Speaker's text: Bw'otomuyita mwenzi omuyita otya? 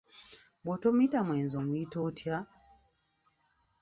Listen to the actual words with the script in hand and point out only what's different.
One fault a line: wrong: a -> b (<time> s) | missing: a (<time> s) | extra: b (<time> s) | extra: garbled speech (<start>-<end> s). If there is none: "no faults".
no faults